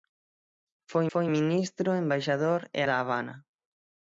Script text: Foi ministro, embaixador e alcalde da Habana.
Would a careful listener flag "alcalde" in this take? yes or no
yes